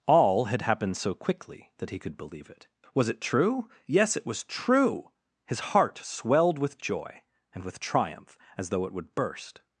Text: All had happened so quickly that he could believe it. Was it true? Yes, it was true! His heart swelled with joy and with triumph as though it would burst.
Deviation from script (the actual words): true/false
false